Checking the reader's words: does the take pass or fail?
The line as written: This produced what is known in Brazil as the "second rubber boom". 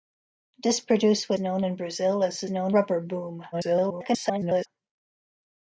fail